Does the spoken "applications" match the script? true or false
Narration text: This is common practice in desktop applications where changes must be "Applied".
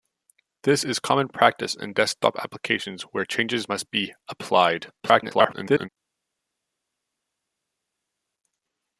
true